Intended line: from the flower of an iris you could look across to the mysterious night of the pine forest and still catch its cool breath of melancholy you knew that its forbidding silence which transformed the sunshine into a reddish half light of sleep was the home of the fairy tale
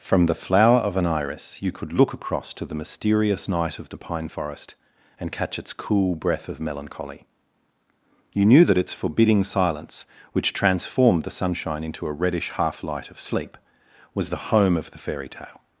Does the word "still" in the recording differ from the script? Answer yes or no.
yes